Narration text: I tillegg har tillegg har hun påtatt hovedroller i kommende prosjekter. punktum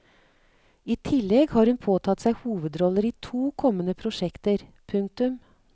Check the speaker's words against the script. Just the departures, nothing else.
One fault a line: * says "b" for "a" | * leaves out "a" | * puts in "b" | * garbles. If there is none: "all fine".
* leaves out "tillegg har"
* puts in "seg"
* puts in "to"